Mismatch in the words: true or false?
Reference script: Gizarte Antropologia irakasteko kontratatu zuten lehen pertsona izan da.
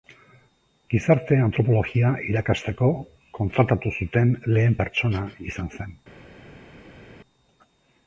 true